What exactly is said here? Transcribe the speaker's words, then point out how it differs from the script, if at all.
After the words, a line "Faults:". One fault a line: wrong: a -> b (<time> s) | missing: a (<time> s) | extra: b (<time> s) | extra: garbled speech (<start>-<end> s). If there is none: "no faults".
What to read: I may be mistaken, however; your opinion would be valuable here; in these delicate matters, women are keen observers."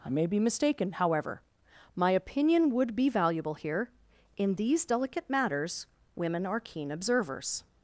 I may be mistaken, however; my opinion would be valuable here; in these delicate matters, women are keen observers."
Faults:
wrong: your -> my (1.9 s)